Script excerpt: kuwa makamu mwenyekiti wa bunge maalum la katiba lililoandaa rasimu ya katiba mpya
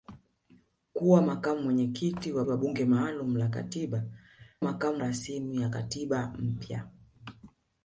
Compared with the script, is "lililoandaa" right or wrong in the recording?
wrong